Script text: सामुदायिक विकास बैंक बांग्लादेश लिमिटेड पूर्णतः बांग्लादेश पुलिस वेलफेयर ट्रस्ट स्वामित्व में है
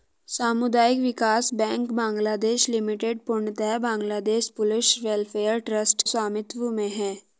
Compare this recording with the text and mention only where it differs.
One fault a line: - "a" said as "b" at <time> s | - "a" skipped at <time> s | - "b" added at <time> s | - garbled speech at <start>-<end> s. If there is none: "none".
none